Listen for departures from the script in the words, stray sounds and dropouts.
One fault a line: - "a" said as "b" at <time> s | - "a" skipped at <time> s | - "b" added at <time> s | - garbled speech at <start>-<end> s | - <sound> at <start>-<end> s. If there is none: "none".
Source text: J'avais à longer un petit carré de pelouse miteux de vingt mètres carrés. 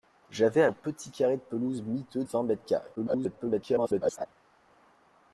- "longer" skipped at 0.7 s
- "de" skipped at 2.2 s
- garbled speech at 3.0-4.3 s